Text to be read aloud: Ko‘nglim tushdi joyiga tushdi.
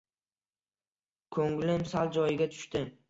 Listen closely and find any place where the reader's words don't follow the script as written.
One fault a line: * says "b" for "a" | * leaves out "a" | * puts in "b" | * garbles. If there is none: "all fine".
* says "sal" for "tushdi"